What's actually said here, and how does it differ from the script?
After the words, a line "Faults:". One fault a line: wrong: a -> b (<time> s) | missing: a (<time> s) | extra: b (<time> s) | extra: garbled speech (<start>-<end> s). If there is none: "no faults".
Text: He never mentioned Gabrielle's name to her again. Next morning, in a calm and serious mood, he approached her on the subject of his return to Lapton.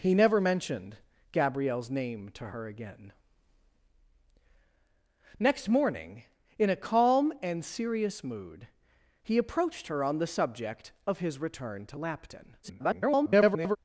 He never mentioned Gabrielle's name to her again. Next morning, in a calm and serious mood, he approached her on the subject of his return to Lapton. [garbled]
Faults:
extra: garbled speech (12.6-13.8 s)